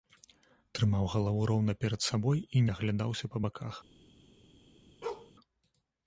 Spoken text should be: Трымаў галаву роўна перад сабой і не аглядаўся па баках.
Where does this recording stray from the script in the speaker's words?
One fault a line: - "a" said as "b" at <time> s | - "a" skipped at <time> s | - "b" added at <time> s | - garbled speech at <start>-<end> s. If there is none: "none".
none